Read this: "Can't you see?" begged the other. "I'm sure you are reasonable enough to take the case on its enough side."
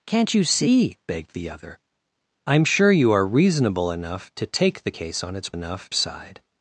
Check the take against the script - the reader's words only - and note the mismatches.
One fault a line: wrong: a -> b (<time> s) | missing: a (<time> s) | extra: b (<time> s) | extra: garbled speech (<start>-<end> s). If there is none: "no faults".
no faults